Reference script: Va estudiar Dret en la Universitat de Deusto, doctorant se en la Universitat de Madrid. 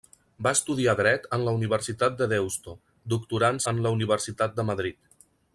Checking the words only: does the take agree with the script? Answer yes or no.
no